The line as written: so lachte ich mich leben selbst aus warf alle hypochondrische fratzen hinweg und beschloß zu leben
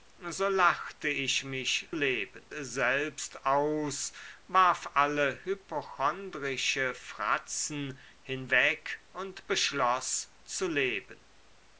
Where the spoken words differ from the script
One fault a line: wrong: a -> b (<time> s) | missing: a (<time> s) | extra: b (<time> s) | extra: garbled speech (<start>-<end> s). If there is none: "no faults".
no faults